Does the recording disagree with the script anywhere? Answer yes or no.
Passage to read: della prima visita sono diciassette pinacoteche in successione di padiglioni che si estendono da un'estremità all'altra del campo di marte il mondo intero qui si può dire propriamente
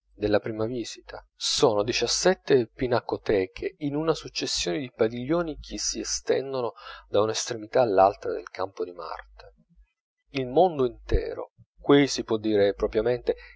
yes